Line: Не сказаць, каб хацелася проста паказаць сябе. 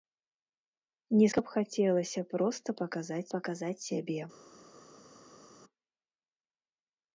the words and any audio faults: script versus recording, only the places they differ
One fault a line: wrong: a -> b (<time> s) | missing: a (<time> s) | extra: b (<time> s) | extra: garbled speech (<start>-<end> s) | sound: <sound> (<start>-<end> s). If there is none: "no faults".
missing: сказаць (1.3 s)
extra: паказаць (3.4 s)